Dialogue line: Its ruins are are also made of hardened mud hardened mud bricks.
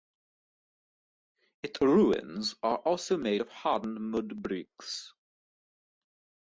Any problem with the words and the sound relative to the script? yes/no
yes